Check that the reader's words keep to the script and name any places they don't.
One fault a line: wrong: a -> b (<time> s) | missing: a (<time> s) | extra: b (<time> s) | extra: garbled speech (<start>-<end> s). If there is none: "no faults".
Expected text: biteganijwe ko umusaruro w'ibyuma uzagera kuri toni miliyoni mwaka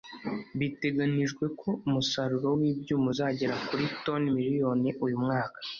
extra: uyu (5.1 s)